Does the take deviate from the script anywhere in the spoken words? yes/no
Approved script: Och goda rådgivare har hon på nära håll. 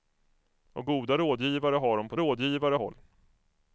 yes